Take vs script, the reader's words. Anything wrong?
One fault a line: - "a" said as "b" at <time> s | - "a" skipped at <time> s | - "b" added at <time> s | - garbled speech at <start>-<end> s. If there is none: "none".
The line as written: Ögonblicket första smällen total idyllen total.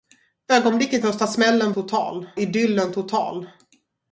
none